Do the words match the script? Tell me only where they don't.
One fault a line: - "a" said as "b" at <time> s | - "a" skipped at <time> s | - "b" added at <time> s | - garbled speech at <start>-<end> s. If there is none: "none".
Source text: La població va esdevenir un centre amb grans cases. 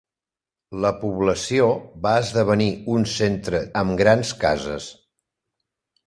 none